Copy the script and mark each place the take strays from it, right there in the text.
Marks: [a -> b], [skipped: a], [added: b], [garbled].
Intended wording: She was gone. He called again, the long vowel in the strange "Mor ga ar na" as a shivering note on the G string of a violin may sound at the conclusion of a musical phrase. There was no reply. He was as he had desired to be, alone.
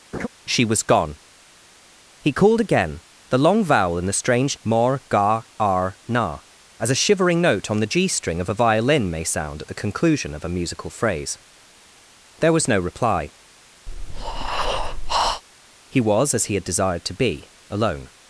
She was gone. He called again, the long vowel in the strange "Mor ga ar na" as a shivering note on the G string of a violin may sound at the conclusion of a musical phrase. There was no reply. He was as he had desired to be, alone.